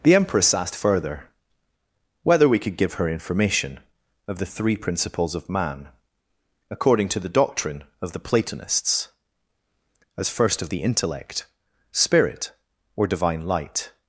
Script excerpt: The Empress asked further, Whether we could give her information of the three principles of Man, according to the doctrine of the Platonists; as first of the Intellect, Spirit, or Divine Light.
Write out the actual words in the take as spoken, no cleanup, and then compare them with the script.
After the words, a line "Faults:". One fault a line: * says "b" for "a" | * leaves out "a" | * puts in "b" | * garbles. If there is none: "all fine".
The Empress asked further, Whether we could give her information of the three principles of Man, according to the doctrine of the Platonists; as first of the Intellect, Spirit, or Divine Light.
Faults:
all fine